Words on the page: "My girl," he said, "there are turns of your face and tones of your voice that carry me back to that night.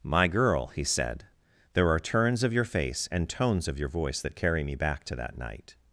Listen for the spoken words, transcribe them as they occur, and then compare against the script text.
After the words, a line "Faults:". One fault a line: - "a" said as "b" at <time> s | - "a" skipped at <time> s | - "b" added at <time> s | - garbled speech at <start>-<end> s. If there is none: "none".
"My girl," he said, "there are turns of your face and tones of your voice that carry me back to that night.
Faults:
none